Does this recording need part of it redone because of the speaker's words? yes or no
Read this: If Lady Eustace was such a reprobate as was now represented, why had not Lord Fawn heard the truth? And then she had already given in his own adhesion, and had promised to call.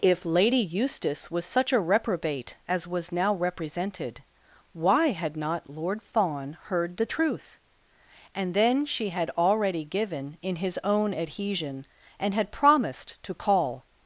no